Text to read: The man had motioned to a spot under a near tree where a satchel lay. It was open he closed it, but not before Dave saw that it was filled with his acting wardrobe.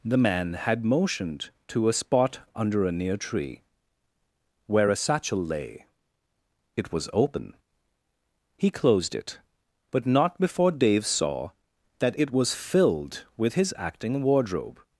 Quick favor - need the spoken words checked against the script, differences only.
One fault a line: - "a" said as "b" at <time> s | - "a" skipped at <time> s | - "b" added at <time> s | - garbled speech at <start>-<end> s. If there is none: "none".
none